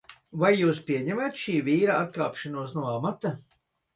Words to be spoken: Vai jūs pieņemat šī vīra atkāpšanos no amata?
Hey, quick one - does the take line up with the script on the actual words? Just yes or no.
yes